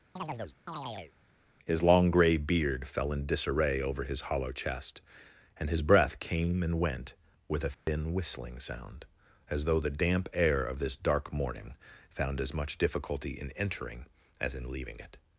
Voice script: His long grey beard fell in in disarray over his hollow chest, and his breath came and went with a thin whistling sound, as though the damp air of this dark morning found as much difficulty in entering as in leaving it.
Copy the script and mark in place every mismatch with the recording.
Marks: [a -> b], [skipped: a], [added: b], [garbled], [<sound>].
[chirp] His long grey beard fell in [skipped: in] disarray over his hollow chest, and his breath came and went with a thin [dropout] whistling sound, as though the damp air of this dark morning found as much difficulty in entering as in leaving it.